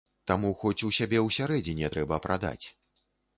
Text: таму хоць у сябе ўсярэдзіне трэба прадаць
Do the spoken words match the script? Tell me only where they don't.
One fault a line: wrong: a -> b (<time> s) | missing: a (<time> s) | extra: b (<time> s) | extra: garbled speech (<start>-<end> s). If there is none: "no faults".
no faults